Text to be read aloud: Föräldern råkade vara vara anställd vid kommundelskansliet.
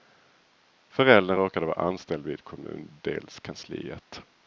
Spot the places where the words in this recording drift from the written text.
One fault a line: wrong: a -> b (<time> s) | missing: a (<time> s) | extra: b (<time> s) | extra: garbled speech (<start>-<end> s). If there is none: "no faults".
missing: vara (1.8 s)